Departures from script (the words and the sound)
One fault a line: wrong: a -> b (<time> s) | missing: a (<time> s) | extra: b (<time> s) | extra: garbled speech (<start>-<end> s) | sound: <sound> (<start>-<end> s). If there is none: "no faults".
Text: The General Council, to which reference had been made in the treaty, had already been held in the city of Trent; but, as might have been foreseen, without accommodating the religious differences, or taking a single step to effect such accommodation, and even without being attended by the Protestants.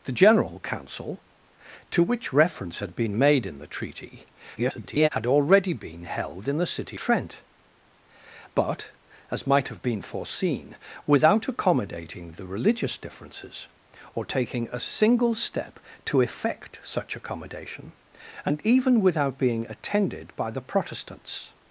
extra: garbled speech (4.6-5.1 s)
missing: of (7.0 s)